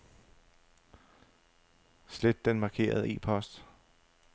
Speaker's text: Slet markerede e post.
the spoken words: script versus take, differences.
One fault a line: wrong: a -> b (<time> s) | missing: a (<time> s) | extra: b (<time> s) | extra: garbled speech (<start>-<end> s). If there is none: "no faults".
extra: den (2.5 s)